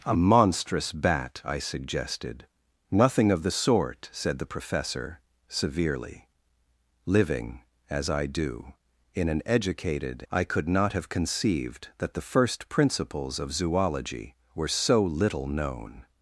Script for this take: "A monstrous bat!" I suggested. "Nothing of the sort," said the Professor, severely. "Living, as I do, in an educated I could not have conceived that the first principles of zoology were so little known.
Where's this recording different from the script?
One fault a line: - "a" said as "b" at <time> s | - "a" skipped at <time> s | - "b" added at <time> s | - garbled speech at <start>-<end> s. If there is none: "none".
none